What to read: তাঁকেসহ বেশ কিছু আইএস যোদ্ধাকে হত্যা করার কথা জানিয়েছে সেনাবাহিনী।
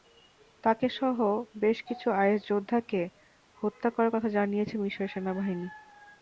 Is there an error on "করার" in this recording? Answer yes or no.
no